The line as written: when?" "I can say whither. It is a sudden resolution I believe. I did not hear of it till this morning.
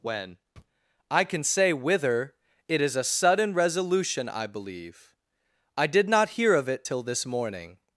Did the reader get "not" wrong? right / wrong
right